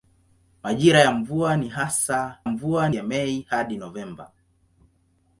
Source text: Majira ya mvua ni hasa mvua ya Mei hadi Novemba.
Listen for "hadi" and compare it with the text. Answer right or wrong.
right